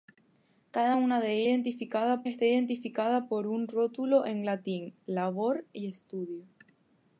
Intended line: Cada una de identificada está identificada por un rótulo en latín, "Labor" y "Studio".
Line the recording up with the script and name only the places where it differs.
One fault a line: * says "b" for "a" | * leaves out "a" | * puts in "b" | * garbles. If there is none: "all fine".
all fine